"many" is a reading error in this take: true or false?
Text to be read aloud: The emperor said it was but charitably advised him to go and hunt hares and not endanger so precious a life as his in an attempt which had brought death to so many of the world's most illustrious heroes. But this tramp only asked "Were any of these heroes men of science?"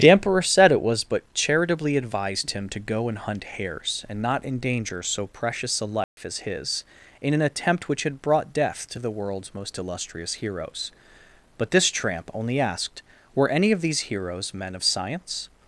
true